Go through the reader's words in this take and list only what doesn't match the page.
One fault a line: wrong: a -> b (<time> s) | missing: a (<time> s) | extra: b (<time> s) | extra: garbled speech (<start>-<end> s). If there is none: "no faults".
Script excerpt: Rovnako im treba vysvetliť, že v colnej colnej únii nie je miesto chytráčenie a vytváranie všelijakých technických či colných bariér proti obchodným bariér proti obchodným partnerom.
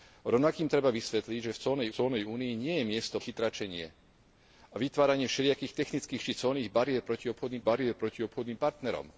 no faults